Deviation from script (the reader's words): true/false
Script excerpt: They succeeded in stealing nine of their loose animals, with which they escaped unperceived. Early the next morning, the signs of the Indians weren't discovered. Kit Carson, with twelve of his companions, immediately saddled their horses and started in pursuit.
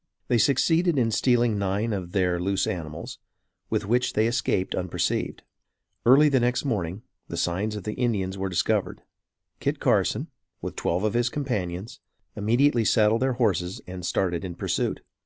true